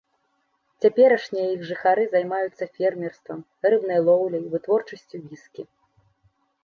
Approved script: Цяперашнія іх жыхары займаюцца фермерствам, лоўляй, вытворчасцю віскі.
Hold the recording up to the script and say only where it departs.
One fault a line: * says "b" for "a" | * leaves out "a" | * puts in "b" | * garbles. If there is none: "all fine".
* puts in "рыбнай"